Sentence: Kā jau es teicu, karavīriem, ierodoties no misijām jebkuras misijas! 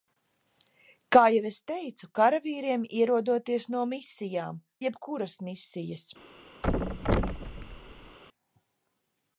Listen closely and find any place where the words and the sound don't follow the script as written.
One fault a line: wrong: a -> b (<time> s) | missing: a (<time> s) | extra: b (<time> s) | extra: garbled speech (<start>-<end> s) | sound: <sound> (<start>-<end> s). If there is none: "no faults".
sound: thud (6.6-8.2 s)